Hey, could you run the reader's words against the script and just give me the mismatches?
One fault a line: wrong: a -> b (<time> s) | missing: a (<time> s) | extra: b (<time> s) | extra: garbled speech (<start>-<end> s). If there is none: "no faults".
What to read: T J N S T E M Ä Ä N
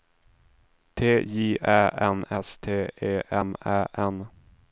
extra: Ä (1.6 s)
missing: Ä (3.8 s)